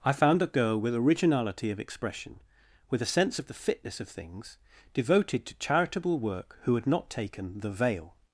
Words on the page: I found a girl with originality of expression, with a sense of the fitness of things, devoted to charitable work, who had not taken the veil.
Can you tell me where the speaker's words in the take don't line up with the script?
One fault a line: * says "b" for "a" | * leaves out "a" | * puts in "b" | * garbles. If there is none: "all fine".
all fine